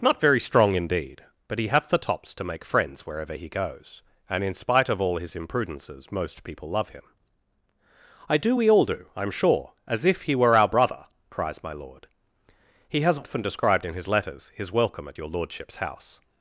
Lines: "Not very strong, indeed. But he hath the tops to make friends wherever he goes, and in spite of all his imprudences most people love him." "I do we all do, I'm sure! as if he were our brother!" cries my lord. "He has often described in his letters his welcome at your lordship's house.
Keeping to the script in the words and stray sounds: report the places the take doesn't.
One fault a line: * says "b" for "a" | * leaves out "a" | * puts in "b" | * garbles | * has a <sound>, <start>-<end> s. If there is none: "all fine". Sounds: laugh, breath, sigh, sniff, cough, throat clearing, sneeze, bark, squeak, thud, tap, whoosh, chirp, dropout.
all fine